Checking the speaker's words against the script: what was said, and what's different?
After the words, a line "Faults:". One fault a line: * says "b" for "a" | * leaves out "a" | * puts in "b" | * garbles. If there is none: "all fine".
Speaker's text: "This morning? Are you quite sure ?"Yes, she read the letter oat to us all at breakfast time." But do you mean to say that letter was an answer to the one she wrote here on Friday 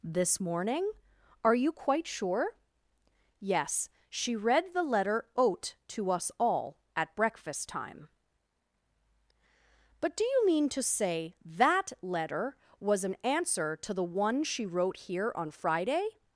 "This morning? Are you quite sure ?"Yes, she read the letter oat to us all at breakfast time." But do you mean to say that letter was an answer to the one she wrote here on Friday
Faults:
all fine